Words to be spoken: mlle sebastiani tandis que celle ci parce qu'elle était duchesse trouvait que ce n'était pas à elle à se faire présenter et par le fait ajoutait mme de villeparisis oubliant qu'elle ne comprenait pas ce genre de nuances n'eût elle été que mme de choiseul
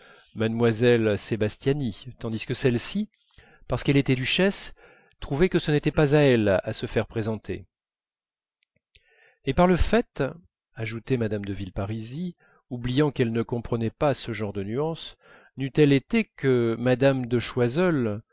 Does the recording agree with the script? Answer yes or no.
yes